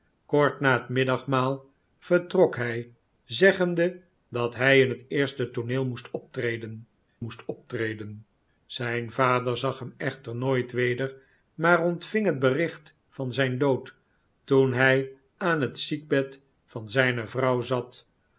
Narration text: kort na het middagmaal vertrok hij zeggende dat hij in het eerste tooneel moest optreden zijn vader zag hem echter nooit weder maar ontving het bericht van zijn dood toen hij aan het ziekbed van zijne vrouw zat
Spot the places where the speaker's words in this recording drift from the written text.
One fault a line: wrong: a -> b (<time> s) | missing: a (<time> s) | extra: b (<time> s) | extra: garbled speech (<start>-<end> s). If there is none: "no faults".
extra: moest optreden (7.2 s)